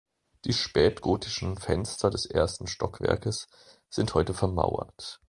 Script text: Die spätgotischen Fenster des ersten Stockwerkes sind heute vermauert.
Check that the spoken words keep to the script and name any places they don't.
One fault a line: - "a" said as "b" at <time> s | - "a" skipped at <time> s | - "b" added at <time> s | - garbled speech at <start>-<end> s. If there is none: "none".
none